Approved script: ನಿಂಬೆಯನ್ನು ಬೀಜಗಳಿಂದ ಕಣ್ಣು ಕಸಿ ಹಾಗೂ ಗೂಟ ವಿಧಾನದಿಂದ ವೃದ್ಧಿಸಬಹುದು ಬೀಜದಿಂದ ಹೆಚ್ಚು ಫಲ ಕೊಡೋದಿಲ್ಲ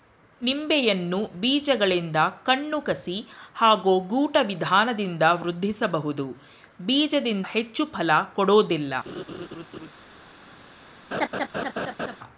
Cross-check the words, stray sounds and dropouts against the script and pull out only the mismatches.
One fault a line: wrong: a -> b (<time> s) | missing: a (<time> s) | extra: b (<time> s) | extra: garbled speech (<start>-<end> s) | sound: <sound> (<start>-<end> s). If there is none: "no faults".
sound: laugh (9.1-9.9 s)
sound: laugh (11.1-12.2 s)